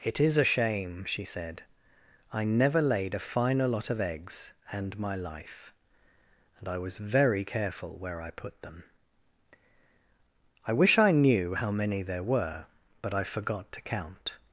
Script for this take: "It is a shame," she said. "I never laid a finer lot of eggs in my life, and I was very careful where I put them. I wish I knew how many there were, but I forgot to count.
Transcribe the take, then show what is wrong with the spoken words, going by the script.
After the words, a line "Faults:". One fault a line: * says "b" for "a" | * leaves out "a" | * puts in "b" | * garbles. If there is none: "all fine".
"It is a shame," she said. "I never laid a finer lot of eggs and my life, and I was very careful where I put them. I wish I knew how many there were, but I forgot to count.
Faults:
* says "and" for "in"